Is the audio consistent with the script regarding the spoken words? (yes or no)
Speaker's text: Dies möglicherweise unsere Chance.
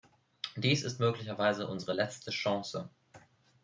no